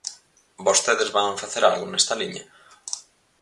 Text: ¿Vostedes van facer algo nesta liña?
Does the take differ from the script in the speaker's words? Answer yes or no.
no